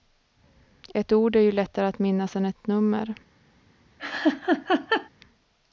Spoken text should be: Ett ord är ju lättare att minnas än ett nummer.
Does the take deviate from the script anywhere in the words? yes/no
no